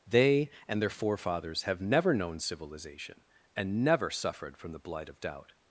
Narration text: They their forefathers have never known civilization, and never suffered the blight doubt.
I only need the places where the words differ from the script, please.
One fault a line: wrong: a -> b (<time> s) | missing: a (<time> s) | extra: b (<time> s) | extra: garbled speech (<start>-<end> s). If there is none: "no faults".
extra: and (0.7 s)
extra: from (4.6 s)
extra: of (5.1 s)